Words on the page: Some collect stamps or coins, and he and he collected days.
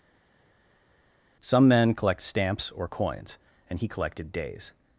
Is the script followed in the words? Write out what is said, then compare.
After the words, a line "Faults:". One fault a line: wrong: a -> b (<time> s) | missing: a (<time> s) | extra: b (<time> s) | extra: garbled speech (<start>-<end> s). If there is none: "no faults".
Some men collect stamps or coins, and he collected days.
Faults:
extra: men (1.7 s)
missing: and he (3.9 s)